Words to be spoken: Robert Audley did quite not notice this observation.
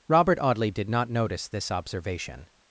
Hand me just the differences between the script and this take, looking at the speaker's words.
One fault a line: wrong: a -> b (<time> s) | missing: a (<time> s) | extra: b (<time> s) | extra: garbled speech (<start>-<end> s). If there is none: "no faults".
missing: quite (0.9 s)